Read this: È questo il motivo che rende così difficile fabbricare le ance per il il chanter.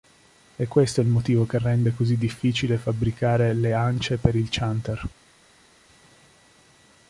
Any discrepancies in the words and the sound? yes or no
yes